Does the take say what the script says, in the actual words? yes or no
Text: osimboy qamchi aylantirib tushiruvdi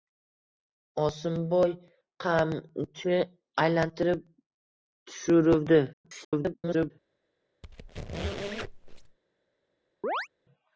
no